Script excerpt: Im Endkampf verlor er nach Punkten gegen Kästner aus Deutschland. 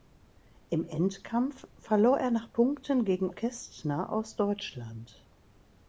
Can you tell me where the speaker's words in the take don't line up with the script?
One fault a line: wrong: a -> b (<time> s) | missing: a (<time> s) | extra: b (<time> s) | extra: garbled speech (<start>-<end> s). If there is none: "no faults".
no faults